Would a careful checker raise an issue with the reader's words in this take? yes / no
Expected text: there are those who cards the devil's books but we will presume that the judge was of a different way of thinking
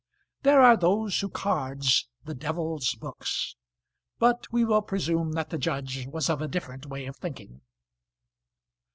no